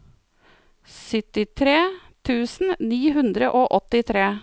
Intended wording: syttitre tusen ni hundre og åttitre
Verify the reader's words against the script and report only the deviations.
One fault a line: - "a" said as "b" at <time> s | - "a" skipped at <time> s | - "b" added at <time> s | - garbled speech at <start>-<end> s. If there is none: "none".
none